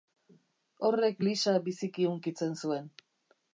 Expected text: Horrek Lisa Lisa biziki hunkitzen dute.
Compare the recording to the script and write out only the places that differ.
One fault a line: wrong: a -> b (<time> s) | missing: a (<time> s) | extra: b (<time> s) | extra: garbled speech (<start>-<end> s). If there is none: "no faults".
missing: Lisa (1.5 s)
wrong: dute -> zuen (2.6 s)